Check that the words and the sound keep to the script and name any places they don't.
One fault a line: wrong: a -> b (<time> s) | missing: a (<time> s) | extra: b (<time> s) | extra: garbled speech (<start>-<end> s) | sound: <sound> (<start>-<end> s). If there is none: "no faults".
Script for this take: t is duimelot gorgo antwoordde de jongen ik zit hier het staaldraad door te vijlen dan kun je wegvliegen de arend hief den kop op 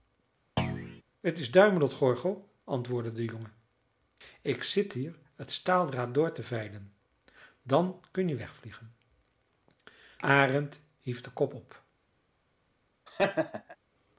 sound: thud (0.6-1.0 s)
missing: de (8.9 s)
sound: laugh (13.1-13.8 s)